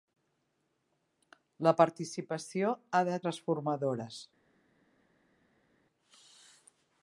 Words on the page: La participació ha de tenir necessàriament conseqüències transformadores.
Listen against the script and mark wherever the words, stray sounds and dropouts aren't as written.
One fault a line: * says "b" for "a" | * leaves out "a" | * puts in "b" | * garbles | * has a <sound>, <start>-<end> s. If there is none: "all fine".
* leaves out "tenir necessàriament conseqüències"